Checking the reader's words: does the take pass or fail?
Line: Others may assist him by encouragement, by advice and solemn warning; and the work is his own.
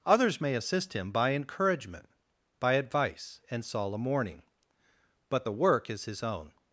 fail